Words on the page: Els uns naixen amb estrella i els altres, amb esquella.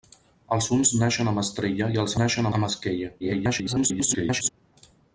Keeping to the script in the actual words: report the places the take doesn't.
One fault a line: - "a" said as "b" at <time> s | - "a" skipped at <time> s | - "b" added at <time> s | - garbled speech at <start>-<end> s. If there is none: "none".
- "altres" said as "naixen" at 2.2 s
- garbled speech at 3.2-4.5 s